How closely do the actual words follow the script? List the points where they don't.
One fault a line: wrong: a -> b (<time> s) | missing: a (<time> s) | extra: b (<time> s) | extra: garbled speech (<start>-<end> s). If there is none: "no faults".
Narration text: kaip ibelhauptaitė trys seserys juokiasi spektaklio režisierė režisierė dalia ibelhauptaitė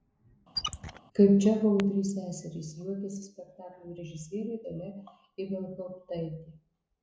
wrong: ibelhauptaitė -> čechovo (1.5 s)
missing: režisierė (4.6 s)